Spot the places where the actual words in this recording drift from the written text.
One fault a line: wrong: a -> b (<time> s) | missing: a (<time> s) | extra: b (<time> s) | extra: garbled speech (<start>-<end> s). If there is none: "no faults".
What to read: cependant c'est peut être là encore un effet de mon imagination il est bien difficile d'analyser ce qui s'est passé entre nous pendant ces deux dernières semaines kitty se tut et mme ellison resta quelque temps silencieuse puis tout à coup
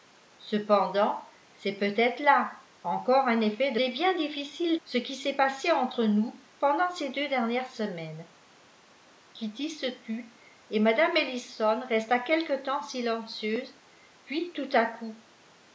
missing: mon imagination il (3.8 s)
missing: d'analyser (4.8 s)